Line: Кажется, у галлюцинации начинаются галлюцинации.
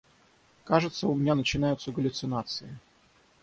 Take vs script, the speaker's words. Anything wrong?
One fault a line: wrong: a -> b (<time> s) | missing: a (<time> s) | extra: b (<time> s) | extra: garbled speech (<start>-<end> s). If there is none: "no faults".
wrong: галлюцинации -> меня (1.1 s)